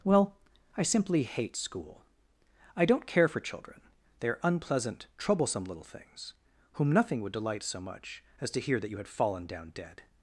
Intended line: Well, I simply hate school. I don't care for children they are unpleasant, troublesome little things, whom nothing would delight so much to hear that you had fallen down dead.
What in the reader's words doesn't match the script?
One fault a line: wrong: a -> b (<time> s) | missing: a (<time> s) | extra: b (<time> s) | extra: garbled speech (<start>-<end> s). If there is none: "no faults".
extra: as (8.4 s)